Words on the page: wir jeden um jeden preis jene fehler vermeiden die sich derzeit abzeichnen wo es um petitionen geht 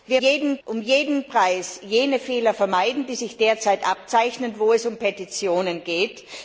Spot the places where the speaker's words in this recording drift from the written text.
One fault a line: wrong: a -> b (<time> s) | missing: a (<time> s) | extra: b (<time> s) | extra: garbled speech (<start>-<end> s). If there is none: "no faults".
no faults